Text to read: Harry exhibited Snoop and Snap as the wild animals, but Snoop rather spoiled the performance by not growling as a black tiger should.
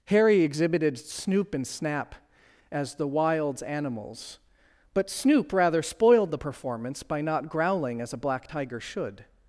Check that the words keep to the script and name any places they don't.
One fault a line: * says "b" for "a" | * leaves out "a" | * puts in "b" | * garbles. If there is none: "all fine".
* says "wilds" for "wild"